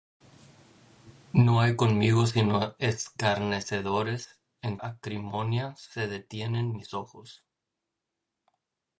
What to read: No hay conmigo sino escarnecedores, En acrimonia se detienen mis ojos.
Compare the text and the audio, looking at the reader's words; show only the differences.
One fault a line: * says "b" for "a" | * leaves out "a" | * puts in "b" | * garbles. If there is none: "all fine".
all fine